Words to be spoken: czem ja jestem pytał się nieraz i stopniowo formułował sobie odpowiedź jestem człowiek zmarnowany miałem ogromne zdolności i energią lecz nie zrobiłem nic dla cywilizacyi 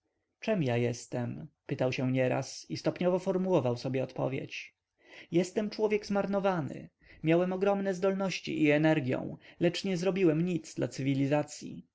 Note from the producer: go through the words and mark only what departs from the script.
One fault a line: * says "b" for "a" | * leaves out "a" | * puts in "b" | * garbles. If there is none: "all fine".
all fine